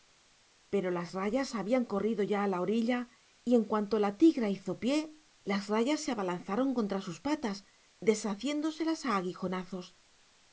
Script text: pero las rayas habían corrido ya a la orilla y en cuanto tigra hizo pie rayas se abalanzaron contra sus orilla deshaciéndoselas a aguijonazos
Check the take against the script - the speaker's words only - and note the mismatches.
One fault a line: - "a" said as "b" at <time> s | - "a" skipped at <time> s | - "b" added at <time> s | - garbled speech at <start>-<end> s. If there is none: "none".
- "la" added at 4.0 s
- "las" added at 5.4 s
- "orilla" said as "patas" at 7.2 s